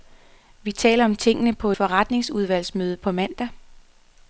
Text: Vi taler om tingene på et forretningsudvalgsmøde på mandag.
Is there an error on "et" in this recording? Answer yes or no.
yes